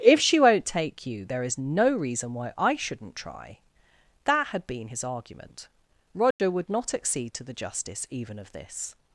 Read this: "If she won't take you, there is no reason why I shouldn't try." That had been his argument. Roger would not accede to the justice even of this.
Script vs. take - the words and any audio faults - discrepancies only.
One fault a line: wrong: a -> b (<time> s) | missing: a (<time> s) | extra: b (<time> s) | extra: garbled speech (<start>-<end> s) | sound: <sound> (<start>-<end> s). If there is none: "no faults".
sound: dropout (6.3-6.4 s)